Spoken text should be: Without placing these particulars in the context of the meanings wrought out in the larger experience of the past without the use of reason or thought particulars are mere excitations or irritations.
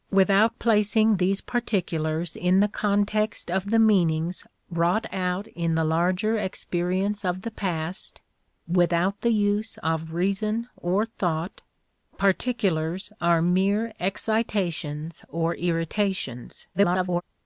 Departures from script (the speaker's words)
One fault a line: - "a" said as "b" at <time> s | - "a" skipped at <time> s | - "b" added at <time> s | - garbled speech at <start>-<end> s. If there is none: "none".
- garbled speech at 16.7-17.2 s